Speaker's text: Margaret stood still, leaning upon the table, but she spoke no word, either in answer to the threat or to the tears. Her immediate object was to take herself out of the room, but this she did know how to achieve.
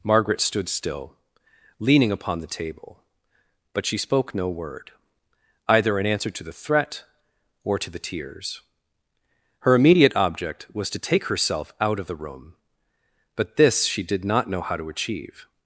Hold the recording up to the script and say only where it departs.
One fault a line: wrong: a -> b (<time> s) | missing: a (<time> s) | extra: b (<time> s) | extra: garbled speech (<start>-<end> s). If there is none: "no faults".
extra: not (14.2 s)